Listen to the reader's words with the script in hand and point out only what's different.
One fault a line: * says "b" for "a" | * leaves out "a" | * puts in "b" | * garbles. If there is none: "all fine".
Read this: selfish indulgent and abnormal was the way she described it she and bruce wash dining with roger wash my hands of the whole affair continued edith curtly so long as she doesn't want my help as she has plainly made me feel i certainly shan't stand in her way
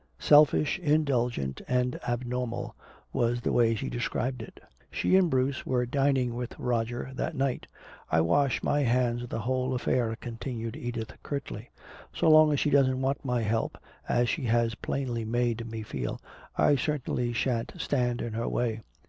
* says "were" for "wash"
* puts in "that night i"